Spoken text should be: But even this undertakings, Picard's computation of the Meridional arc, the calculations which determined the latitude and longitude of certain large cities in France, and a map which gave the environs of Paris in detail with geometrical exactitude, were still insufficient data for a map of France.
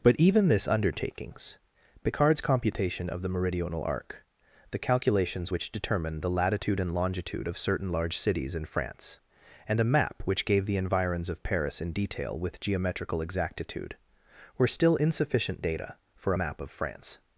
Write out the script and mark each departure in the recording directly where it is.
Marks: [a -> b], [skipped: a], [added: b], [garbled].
But even this undertakings, Picard's computation of the Meridional arc, the calculations which determined the latitude and longitude of certain large cities in France, and a map which gave the environs of Paris in detail with geometrical exactitude, were still insufficient data for a map of France.